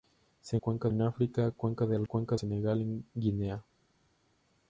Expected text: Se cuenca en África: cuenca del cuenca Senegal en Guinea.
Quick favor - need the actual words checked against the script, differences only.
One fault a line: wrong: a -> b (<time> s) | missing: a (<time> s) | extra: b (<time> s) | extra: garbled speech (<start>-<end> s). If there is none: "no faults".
no faults